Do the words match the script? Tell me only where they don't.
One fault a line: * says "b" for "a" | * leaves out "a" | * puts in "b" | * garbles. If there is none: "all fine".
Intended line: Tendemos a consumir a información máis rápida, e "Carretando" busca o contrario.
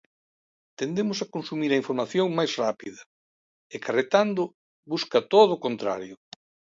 * puts in "todo"